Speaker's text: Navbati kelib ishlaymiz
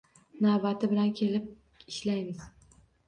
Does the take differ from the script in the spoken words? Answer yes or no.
yes